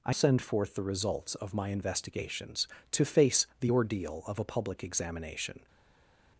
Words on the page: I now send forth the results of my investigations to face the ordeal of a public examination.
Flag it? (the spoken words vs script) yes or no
yes